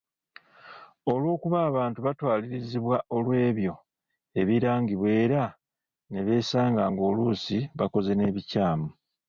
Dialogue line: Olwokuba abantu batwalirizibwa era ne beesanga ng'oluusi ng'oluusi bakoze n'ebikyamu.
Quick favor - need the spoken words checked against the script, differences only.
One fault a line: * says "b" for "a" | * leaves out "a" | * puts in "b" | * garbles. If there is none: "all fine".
* puts in "olw'ebyo ebirangibwa"
* leaves out "ng'oluusi"